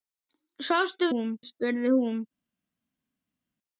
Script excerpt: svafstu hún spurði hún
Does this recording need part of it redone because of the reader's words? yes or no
no